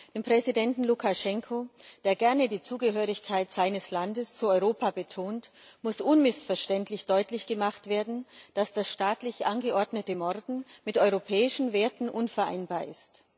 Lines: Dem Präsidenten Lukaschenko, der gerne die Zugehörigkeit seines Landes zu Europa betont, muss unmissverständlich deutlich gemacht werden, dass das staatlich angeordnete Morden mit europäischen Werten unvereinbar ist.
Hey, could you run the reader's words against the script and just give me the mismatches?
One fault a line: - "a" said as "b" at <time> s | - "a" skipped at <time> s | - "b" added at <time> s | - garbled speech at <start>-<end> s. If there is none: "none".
none